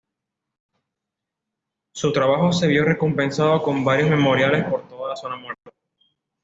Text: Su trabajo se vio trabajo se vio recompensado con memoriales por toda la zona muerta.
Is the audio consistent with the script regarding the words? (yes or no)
no